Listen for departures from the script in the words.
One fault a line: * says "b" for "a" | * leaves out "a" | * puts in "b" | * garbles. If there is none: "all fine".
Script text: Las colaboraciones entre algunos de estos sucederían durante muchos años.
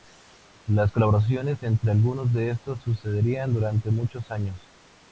all fine